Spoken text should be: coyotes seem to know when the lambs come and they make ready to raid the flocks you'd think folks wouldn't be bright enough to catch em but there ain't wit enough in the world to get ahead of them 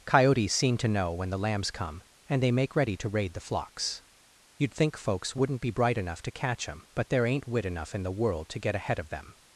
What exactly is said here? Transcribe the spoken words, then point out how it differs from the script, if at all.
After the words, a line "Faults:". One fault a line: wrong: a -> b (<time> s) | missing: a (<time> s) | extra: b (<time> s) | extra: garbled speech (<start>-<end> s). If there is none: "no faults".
coyotes seem to know when the lambs come and they make ready to raid the flocks you'd think folks wouldn't be bright enough to catch em but there ain't wit enough in the world to get ahead of them
Faults:
no faults